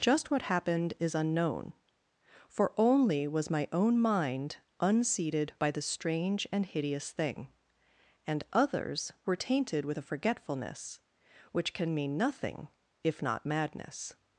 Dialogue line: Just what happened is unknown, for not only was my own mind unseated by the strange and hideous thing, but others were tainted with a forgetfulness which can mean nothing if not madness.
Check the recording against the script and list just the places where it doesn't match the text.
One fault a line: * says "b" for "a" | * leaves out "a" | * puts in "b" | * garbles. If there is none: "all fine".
* leaves out "not"
* says "and" for "but"